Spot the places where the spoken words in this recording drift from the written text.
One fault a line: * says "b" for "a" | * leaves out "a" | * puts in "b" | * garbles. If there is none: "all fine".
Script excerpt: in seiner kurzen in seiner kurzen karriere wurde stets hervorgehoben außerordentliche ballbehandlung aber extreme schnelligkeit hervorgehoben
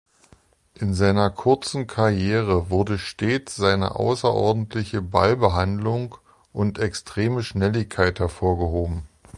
* leaves out "in seiner kurzen"
* says "seine" for "hervorgehoben"
* says "und" for "aber"